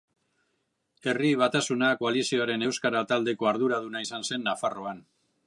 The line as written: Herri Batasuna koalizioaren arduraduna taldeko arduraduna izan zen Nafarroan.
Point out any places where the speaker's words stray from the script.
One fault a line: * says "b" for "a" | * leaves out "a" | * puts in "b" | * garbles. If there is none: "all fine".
* says "euskara" for "arduraduna"